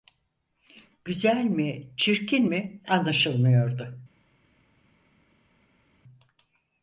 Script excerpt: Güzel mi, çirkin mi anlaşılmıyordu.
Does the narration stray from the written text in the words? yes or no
no